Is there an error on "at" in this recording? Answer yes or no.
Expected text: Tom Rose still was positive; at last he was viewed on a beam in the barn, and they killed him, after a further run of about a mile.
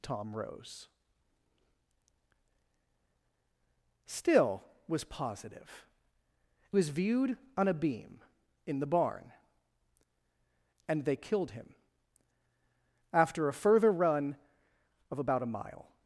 yes